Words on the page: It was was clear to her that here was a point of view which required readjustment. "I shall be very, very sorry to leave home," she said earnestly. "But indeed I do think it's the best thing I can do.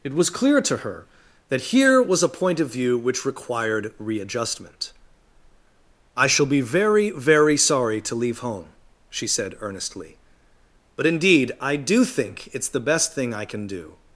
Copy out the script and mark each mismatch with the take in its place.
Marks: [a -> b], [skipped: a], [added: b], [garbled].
It was [skipped: was] clear to her that here was a point of view which required readjustment. "I shall be very, very sorry to leave home," she said earnestly. "But indeed I do think it's the best thing I can do.